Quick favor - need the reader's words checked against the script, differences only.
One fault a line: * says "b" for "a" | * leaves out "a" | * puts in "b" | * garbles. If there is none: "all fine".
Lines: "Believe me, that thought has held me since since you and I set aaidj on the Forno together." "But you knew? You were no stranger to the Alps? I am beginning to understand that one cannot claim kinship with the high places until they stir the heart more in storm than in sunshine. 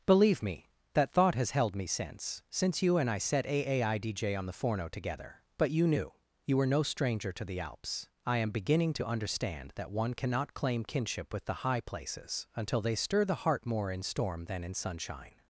all fine